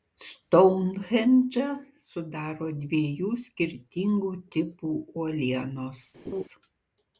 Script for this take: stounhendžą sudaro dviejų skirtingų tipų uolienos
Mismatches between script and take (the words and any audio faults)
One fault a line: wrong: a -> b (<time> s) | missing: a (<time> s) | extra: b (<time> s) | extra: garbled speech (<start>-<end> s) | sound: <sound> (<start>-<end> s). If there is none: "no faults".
sound: laugh (6.2-6.4 s)